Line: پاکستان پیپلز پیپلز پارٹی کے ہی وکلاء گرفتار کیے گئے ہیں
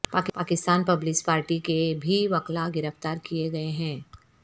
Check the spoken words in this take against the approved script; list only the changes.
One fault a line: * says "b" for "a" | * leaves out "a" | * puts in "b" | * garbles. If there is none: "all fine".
* leaves out "پیپلز"
* says "بھی" for "ہی"